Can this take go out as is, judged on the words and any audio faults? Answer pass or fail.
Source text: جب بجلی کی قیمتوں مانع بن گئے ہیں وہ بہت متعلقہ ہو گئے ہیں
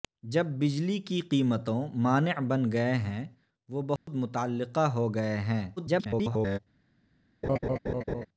fail